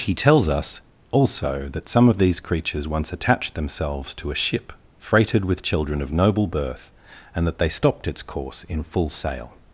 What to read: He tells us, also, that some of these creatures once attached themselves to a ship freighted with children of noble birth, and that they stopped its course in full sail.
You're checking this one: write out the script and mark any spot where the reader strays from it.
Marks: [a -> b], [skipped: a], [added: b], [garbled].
He tells us, also, that some of these creatures once attached themselves to a ship freighted with children of noble birth, and that they stopped its course in full sail.